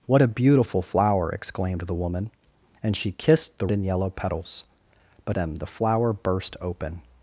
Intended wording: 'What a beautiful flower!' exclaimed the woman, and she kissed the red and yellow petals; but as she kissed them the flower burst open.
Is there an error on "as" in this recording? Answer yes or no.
yes